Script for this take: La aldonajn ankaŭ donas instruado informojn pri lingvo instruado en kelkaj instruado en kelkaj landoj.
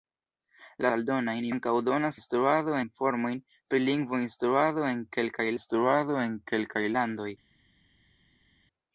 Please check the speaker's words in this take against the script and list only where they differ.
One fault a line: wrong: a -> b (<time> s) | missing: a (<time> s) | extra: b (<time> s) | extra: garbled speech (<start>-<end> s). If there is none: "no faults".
no faults